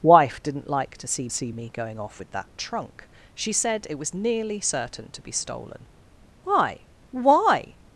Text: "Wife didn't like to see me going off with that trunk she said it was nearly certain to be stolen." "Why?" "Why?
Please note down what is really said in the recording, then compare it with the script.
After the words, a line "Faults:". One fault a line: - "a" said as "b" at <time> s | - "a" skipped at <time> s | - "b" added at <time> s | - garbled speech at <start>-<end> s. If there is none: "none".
"Wife didn't like to see see me going off with that trunk she said it was nearly certain to be stolen." "Why?" "Why?
Faults:
- "see" added at 1.3 s